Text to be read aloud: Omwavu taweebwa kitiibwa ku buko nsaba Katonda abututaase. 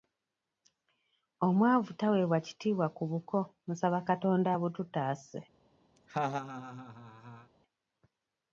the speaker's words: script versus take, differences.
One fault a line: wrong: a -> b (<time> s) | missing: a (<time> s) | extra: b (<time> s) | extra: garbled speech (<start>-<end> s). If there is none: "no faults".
no faults